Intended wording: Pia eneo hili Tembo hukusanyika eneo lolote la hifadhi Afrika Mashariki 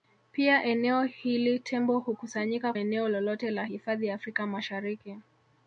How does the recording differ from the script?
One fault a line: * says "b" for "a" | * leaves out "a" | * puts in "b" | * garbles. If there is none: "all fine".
all fine